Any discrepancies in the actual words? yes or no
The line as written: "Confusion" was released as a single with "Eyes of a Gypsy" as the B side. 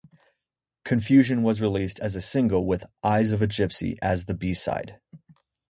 no